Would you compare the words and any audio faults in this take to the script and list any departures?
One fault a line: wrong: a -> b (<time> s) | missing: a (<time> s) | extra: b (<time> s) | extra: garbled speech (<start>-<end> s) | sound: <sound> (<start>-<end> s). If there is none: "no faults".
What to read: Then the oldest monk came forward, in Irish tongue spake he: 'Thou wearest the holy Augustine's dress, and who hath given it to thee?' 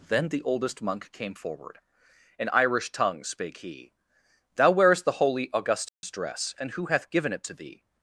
sound: dropout (5.9-6.0 s)